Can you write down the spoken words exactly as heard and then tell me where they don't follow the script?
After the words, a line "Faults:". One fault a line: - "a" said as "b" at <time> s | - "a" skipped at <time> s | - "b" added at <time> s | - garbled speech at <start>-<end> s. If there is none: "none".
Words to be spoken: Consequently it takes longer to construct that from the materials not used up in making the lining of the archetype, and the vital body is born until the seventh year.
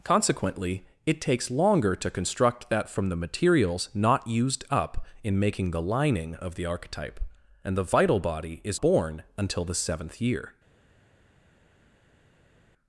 Consequently it takes longer to construct that from the materials not used up in making the lining of the archetype, and the vital body is born until the seventh year.
Faults:
none